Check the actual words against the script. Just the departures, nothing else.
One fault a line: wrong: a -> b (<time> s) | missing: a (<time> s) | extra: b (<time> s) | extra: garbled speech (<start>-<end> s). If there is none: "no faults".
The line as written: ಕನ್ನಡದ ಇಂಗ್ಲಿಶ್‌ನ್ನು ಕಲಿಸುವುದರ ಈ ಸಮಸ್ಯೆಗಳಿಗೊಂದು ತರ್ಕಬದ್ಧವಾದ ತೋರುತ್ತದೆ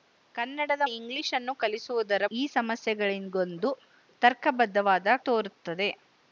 no faults